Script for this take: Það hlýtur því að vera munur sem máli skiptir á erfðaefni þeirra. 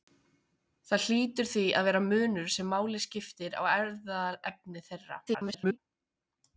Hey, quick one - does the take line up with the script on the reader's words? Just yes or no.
no